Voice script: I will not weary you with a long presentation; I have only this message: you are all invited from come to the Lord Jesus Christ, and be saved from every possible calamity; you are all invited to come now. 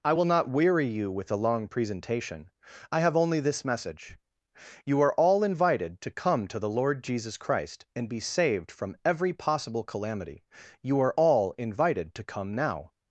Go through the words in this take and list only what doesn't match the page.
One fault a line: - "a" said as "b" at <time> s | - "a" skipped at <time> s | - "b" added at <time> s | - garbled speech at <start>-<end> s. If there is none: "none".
- "from" said as "to" at 6.0 s